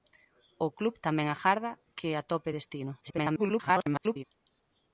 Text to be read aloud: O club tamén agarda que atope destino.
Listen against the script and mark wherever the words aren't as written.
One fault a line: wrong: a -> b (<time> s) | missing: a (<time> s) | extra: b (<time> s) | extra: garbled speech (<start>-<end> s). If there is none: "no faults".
extra: garbled speech (3.0-4.2 s)